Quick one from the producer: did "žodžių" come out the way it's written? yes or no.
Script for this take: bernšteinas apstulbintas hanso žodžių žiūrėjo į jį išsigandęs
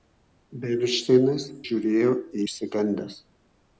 no